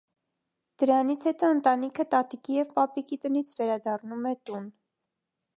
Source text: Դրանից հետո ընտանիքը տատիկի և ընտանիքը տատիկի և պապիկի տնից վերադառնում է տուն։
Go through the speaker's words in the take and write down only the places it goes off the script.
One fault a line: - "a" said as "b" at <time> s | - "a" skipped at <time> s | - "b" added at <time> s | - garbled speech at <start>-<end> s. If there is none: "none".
- "ընտանիքը տատիկի և" skipped at 2.7 s